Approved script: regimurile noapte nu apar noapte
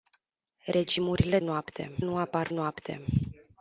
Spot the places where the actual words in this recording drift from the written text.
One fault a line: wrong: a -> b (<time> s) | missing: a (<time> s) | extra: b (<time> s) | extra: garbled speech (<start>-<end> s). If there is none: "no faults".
no faults